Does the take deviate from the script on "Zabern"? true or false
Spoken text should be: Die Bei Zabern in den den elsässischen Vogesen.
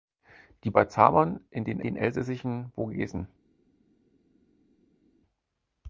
false